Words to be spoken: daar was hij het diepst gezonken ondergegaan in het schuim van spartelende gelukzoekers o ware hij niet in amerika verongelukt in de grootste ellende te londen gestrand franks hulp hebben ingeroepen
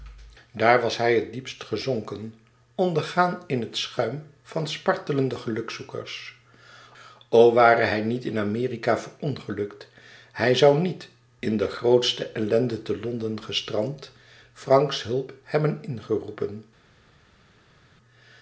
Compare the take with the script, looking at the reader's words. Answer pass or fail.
fail